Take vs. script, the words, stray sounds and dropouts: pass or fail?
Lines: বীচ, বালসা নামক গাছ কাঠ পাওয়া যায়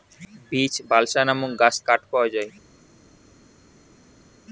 pass